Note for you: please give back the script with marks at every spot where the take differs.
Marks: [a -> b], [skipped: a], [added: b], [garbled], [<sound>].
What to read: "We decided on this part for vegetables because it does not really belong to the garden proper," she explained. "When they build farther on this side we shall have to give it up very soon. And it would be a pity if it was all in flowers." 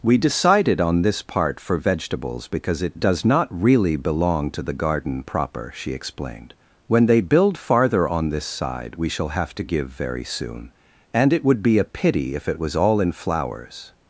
"We decided on this part for vegetables because it does not really belong to the garden proper," she explained. "When they build farther on this side we shall have to give [skipped: it up] very soon. And it would be a pity if it was all in flowers."